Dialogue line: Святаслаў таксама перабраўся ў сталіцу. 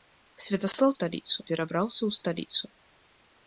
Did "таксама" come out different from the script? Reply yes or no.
yes